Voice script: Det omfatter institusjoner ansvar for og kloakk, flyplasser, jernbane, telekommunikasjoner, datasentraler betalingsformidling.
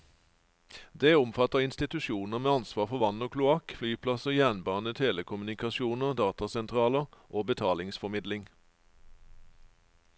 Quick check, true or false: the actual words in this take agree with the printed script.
false